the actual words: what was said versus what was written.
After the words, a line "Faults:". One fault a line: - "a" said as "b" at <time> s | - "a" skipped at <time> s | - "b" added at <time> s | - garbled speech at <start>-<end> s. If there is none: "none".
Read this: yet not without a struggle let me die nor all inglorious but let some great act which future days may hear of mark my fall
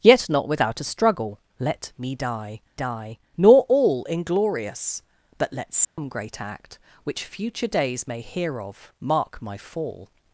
yet not without a struggle let me die die nor all inglorious but let some great act which future days may hear of mark my fall
Faults:
- "die" added at 2.7 s